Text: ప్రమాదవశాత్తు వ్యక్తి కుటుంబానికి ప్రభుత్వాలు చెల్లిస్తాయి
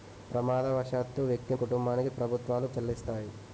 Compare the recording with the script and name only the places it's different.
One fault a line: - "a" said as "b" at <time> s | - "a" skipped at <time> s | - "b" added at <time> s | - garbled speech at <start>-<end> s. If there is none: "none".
none